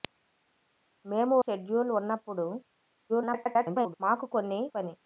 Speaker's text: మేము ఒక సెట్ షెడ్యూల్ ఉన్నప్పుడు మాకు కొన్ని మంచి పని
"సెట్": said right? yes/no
no